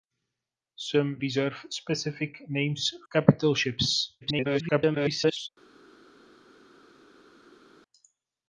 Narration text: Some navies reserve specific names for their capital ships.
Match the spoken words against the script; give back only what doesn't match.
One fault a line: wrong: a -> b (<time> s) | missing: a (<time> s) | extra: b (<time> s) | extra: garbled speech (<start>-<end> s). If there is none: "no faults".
missing: navies (1.2 s)
missing: for their (2.9 s)
extra: garbled speech (4.2-5.5 s)